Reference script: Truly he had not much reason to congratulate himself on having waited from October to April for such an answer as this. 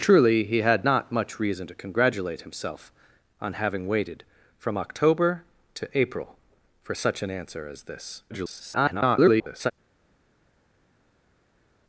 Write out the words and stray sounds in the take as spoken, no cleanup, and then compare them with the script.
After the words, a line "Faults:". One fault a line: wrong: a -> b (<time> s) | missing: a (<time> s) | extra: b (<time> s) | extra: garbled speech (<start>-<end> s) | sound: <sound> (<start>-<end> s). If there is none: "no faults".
Truly he had not much reason to congratulate himself on having waited from October to April for such an answer as this. [garbled]
Faults:
extra: garbled speech (8.3-9.7 s)